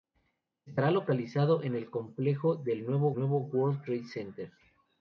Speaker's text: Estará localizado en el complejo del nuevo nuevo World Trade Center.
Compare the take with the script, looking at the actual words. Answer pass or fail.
pass